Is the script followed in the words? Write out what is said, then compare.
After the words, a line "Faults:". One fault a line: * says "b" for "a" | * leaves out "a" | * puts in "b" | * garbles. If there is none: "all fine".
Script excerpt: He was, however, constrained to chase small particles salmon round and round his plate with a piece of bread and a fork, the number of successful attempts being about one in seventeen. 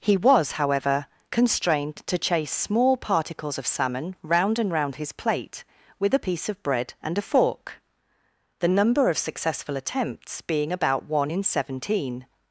He was, however, constrained to chase small particles of salmon round and round his plate with a piece of bread and a fork, the number of successful attempts being about one in seventeen.
Faults:
* puts in "of"